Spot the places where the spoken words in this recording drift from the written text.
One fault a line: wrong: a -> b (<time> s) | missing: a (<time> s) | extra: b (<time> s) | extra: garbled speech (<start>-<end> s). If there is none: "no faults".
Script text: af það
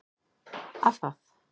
no faults